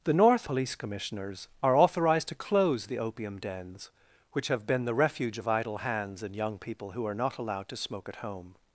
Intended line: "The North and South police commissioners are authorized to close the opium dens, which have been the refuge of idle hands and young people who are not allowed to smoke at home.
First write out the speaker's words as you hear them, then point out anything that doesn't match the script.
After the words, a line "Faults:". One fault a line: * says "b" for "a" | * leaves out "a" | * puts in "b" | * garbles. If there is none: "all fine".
"The North police commissioners are authorized to close the opium dens, which have been the refuge of idle hands and young people who are not allowed to smoke at home.
Faults:
* leaves out "and South"